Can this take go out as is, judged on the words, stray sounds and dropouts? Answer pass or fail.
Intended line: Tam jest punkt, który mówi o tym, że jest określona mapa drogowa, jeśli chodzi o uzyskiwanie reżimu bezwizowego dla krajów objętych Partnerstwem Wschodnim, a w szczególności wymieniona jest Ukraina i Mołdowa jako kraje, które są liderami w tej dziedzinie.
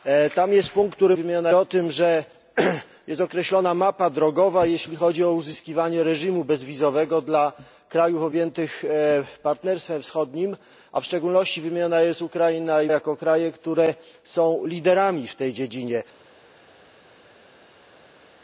fail